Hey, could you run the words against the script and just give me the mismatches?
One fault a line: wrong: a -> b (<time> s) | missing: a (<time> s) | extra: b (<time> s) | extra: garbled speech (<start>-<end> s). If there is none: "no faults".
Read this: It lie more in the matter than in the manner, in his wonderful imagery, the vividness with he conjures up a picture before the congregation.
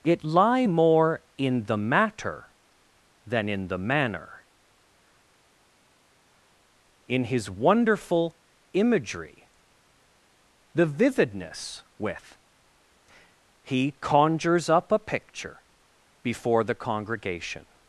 no faults